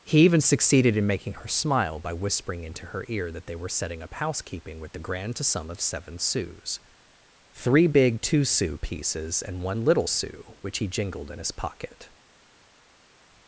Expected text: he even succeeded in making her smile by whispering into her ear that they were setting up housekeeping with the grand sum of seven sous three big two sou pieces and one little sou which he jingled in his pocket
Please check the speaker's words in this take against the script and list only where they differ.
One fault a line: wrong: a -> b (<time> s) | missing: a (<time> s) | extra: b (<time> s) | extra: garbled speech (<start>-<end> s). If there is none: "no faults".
no faults